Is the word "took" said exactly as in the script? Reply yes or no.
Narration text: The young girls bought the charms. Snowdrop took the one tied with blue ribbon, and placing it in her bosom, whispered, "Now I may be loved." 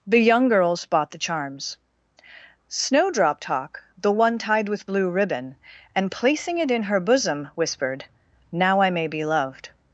no